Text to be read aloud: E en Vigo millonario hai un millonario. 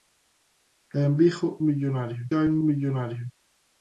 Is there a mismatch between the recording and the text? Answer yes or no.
no